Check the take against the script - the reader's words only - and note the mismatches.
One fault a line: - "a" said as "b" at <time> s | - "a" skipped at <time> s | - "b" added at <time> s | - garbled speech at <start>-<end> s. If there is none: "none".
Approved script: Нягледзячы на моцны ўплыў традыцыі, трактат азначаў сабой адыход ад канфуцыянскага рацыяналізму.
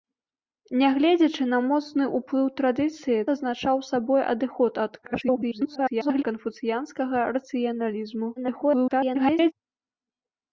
- "трактат" skipped at 3.2 s
- garbled speech at 5.0-6.2 s
- garbled speech at 8.4-9.5 s